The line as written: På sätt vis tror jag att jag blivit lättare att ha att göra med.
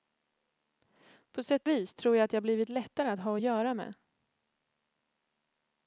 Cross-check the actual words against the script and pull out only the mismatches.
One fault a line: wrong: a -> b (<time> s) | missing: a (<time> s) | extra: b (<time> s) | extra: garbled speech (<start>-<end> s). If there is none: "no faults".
no faults